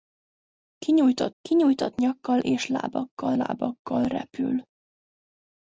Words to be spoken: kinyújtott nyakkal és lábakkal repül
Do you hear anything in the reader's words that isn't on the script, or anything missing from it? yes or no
yes